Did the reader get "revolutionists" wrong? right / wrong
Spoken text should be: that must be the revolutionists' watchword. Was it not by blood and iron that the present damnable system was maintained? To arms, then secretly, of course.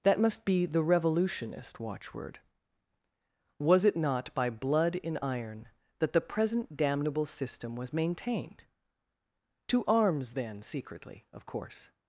wrong